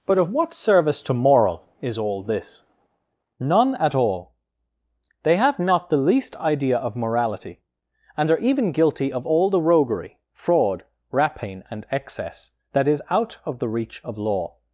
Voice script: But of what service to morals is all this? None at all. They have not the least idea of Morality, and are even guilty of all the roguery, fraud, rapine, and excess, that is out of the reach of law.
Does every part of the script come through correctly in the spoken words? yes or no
no